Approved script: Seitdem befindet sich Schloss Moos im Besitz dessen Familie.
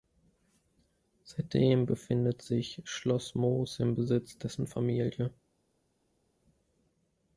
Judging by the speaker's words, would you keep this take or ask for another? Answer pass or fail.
pass